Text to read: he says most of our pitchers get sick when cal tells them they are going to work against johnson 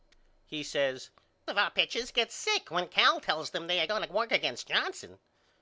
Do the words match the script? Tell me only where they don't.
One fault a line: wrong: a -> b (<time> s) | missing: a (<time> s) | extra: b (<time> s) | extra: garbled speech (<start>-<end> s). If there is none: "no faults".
missing: most (1.1 s)